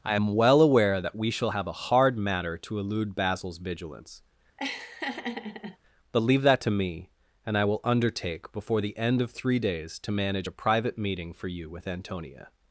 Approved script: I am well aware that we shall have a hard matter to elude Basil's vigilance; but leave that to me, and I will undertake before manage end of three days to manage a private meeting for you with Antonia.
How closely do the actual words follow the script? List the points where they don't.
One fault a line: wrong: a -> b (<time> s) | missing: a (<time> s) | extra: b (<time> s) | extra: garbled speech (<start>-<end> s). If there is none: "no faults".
wrong: manage -> the (8.8 s)